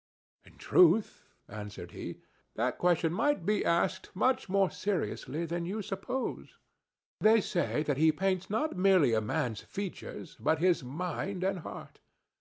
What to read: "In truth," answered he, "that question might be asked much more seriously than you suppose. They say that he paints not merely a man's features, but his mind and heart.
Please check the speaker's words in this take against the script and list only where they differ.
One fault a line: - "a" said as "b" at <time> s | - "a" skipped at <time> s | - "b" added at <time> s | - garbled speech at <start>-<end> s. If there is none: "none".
none